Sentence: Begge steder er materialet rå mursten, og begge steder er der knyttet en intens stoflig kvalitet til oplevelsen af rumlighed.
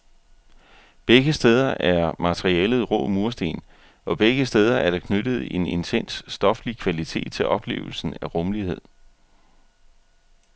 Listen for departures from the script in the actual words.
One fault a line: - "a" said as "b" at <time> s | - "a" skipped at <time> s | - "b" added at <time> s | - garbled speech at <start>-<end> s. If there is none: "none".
none